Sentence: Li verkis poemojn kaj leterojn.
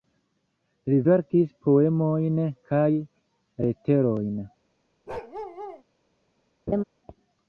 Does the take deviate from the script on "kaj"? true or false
false